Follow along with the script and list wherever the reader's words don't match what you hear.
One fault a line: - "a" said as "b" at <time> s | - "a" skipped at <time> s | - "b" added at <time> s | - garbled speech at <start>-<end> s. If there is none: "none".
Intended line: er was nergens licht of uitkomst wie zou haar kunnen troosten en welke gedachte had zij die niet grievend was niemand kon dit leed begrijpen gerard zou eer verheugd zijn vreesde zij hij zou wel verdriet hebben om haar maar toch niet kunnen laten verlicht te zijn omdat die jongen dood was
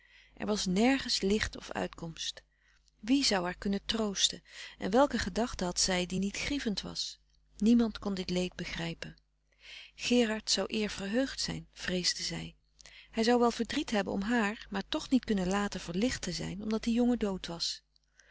none